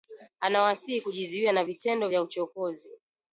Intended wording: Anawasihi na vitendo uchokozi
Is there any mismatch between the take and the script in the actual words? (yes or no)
yes